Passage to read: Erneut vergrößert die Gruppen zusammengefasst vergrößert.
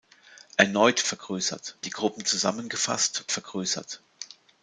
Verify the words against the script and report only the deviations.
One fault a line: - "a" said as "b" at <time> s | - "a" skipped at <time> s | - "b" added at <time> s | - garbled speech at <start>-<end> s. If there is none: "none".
none